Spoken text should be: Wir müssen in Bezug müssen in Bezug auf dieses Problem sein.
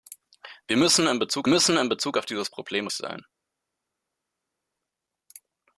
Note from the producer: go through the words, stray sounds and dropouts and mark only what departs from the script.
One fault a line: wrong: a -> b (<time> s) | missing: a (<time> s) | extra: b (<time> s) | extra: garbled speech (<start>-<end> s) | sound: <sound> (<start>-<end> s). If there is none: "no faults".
no faults